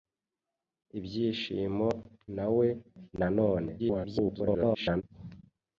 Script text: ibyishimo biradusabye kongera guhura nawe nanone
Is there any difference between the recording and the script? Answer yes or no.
yes